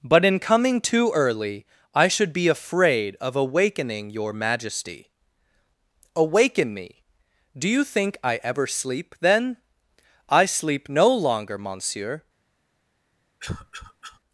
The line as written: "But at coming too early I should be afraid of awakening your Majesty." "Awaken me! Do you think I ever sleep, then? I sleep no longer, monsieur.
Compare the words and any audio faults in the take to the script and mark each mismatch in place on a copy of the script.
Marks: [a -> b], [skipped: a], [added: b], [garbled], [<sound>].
"But [at -> in] coming too early I should be afraid of awakening your Majesty." "Awaken me! Do you think I ever sleep, then? I sleep no longer, monsieur. [cough]